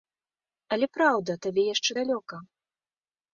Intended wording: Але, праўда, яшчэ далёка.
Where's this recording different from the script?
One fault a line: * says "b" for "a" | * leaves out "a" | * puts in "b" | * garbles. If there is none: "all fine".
* puts in "табе"